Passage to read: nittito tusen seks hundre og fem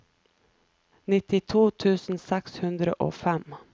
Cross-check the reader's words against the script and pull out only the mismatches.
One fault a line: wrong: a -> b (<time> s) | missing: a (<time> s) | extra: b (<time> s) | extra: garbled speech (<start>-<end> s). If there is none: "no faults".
no faults